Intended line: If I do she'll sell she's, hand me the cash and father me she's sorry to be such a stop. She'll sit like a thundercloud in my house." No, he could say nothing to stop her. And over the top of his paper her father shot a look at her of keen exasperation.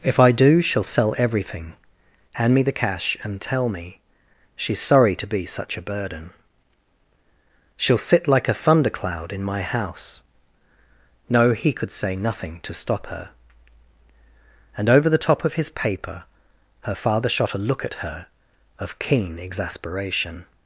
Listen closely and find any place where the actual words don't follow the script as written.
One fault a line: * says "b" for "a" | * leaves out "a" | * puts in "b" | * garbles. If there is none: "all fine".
* says "everything" for "she's"
* says "tell" for "father"
* says "burden" for "stop"